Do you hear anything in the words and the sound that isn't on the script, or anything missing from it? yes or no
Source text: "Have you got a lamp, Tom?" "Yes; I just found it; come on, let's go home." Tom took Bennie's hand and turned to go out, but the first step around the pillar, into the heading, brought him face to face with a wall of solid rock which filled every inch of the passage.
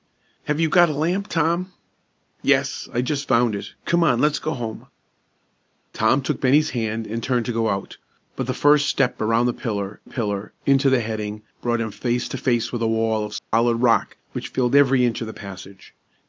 yes